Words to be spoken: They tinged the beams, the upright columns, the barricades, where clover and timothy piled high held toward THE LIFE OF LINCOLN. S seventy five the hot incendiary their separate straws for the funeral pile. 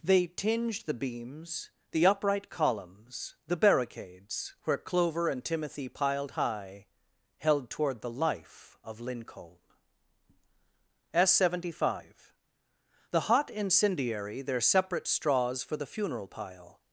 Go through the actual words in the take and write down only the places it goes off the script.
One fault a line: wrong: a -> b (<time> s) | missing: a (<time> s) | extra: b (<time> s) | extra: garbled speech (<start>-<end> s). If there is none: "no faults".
no faults